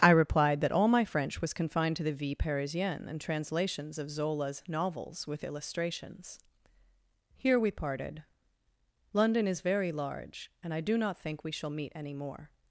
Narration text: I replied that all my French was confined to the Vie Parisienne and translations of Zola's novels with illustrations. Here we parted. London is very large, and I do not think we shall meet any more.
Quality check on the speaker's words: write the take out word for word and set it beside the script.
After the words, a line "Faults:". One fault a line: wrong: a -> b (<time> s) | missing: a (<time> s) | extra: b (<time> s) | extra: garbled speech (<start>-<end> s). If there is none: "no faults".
I replied that all my French was confined to the Vie Parisienne and translations of Zola's novels with illustrations. Here we parted. London is very large, and I do not think we shall meet any more.
Faults:
no faults